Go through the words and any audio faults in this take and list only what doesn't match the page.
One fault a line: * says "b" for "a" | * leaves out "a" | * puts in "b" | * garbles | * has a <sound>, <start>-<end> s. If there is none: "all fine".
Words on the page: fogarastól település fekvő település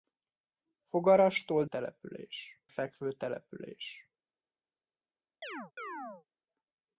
* has a chirp, 5.4-6.3 s